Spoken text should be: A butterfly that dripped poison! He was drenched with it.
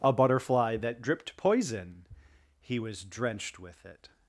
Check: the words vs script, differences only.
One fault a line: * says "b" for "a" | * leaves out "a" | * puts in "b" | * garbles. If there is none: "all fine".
all fine